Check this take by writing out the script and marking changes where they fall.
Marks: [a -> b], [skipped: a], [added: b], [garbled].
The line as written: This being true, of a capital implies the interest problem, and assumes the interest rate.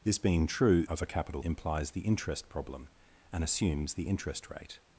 This being true, of a capital implies the interest problem, and assumes the interest rate.